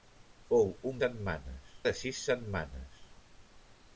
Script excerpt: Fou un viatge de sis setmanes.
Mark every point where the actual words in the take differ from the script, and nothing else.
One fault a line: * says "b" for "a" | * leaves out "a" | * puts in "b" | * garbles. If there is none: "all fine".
* says "setmanes" for "viatge"